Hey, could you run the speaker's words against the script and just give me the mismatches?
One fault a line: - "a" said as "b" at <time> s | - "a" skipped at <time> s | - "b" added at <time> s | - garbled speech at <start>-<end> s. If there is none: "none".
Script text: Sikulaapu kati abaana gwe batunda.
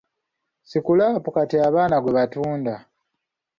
none